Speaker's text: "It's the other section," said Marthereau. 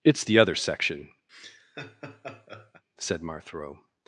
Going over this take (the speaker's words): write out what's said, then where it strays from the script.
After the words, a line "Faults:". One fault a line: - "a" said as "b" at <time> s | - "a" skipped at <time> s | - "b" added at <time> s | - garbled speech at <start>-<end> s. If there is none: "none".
"It's the other section," said Marthereau.
Faults:
none